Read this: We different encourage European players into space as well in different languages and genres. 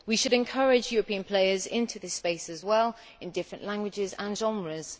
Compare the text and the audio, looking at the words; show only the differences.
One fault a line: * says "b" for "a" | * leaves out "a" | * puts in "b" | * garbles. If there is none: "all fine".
* says "should" for "different"
* puts in "this"